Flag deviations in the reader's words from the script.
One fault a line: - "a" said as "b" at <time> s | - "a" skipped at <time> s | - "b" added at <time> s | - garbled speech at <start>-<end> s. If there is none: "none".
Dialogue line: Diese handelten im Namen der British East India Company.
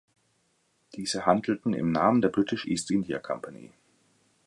none